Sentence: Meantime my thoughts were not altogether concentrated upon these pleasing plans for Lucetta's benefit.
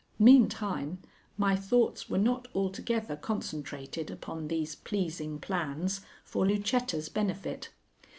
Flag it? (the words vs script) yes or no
no